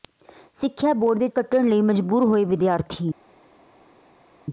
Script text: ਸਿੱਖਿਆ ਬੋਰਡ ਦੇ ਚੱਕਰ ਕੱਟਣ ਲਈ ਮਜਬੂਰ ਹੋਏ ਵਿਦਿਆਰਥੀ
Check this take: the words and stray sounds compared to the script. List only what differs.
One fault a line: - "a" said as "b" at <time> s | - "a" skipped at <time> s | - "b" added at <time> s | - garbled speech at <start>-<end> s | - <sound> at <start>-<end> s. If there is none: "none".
- "ਚੱਕਰ" skipped at 1.3 s